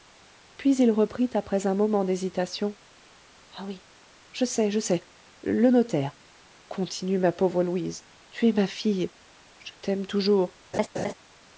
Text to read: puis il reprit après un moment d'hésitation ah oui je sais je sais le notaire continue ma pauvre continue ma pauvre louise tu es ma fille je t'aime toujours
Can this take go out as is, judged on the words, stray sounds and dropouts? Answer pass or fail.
fail